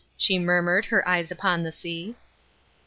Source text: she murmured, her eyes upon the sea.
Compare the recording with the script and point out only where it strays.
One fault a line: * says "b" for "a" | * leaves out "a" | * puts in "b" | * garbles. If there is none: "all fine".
all fine